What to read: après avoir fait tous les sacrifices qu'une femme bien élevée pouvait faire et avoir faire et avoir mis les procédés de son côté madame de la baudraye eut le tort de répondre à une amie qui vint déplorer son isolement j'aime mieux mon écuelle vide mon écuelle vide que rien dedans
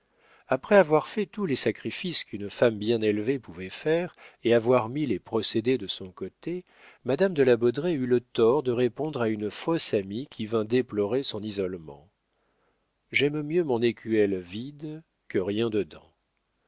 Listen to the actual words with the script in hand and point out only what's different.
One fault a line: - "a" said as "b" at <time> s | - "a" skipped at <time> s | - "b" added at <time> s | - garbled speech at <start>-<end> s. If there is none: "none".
- "faire et avoir" skipped at 4.9 s
- "fausse" added at 9.5 s
- "mon écuelle vide" skipped at 15.0 s